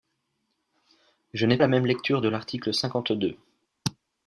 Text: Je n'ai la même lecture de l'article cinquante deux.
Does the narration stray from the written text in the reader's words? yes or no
no